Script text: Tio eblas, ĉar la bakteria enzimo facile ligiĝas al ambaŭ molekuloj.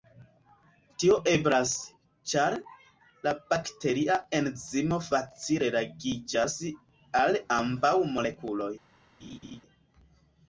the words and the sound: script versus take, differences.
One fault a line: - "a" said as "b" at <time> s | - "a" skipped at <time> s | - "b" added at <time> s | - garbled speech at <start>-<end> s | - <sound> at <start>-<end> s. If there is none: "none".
- laugh at 9.2-9.6 s